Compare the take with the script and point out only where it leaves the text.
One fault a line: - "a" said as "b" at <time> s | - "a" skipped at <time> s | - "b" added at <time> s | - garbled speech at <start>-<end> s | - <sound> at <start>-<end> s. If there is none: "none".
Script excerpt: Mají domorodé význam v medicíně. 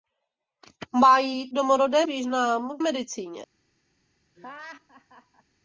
- laugh at 4.3-5.4 s